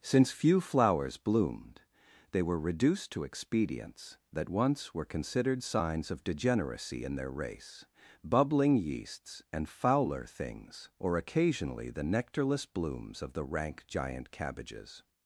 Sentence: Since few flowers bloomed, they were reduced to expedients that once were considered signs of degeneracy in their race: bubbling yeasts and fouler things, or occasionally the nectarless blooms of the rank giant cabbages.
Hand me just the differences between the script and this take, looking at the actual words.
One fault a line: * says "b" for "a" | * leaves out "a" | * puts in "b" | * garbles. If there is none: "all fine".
all fine